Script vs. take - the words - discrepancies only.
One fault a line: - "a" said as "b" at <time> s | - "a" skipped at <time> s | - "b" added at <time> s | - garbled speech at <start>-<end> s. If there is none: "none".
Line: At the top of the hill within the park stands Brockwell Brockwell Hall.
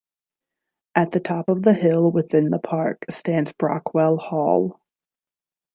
- "Brockwell" skipped at 4.2 s